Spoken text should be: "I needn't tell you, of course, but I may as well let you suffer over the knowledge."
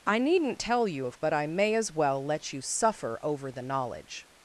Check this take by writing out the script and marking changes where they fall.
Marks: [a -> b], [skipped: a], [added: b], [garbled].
"I needn't tell you, of [skipped: course,] but I may as well let you suffer over the knowledge."